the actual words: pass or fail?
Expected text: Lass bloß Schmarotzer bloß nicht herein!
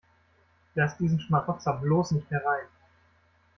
fail